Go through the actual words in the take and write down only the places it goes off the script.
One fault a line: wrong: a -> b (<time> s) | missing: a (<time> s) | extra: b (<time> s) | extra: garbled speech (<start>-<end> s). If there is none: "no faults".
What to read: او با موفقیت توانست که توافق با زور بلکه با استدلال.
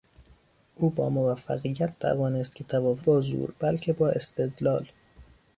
no faults